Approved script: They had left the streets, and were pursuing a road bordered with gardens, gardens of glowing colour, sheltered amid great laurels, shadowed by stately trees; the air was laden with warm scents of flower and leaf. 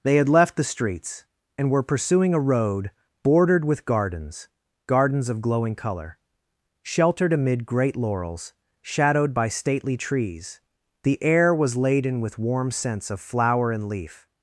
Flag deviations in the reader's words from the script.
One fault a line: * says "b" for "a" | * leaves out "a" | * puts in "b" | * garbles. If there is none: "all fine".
all fine